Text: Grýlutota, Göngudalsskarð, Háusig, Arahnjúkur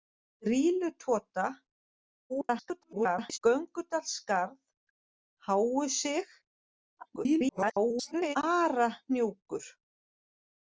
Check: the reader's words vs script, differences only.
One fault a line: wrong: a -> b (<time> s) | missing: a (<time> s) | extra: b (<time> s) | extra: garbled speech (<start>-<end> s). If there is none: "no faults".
extra: garbled speech (2.3-3.4 s)
extra: garbled speech (7.0-8.4 s)